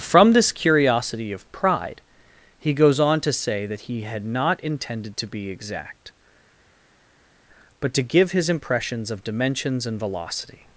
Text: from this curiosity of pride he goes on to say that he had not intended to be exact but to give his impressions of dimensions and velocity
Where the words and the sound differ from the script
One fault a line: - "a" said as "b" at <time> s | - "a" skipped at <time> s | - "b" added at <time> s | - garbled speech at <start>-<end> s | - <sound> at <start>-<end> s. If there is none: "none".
none